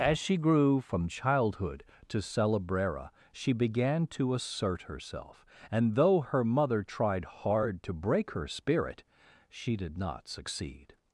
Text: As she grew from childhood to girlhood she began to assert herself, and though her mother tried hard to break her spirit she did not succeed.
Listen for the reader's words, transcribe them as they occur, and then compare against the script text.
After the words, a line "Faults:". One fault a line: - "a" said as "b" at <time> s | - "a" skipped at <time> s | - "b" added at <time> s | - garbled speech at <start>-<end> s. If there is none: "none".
As she grew from childhood to celebrera she began to assert herself, and though her mother tried hard to break her spirit she did not succeed.
Faults:
- "girlhood" said as "celebrera" at 2.2 s